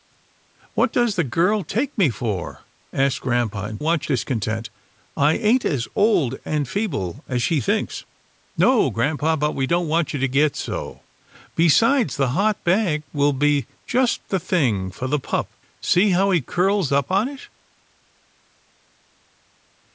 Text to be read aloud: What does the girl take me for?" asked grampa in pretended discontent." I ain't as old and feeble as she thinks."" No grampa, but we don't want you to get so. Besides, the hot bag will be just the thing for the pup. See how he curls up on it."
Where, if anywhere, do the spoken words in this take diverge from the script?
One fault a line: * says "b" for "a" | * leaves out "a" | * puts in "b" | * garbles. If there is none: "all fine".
* says "want" for "pretended"